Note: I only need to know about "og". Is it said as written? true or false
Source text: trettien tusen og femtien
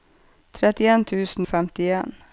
false